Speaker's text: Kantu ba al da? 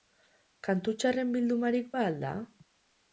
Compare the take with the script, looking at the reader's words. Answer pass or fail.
fail